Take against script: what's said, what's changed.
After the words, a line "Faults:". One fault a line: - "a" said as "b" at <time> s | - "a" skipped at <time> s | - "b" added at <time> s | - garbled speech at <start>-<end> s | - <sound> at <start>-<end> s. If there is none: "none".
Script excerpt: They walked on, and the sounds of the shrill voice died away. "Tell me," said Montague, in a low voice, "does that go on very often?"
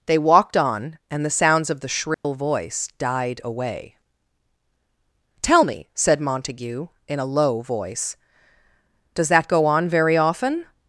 They walked on, and the sounds of the shrill voice died away. "Tell me," said Montague, in a low voice, "does that go on very often?"
Faults:
- dropout at 2.1-2.2 s